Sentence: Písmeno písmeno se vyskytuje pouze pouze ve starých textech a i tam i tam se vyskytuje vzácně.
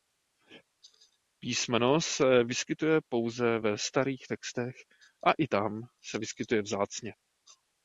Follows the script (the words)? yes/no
no